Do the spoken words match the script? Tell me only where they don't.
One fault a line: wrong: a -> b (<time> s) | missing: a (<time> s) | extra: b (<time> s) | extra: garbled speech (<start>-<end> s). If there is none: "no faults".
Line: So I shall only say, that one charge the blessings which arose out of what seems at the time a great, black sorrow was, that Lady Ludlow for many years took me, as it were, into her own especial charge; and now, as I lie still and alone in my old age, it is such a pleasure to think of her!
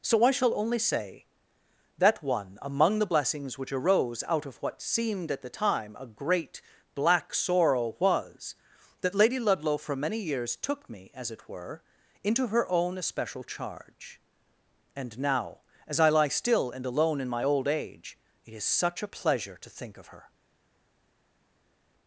wrong: charge -> among (2.6 s)
wrong: seems -> seemed (4.8 s)